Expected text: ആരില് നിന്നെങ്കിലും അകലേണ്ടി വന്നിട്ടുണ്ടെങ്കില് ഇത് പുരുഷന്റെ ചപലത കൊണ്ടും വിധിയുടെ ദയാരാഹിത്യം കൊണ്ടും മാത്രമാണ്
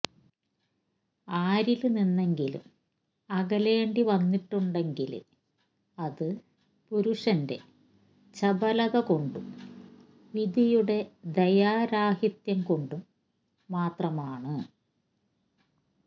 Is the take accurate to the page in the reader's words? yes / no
no